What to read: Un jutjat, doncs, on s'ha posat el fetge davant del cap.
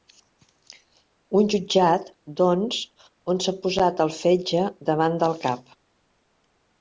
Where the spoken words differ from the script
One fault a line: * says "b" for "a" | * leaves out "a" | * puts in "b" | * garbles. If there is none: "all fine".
all fine